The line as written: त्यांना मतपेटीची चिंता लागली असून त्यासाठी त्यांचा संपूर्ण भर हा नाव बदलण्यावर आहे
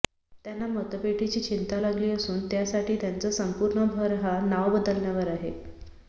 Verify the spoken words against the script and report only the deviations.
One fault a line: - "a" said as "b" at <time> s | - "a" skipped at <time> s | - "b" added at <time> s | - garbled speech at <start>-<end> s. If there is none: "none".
none